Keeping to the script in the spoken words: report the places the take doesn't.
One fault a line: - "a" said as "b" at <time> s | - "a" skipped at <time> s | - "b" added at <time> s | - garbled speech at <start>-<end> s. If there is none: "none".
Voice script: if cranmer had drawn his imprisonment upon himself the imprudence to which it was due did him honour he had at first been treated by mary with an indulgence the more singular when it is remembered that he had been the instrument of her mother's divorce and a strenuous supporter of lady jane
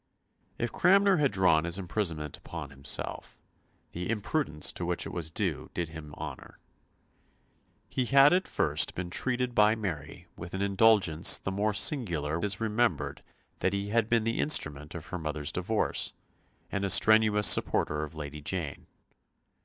- "when it" skipped at 12.4 s